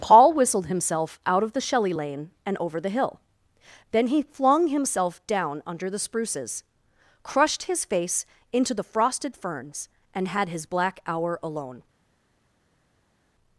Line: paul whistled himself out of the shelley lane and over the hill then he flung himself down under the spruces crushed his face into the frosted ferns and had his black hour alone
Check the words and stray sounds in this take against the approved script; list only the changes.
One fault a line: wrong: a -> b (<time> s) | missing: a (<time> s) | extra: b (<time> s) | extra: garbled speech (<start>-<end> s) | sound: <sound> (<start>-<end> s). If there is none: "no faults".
no faults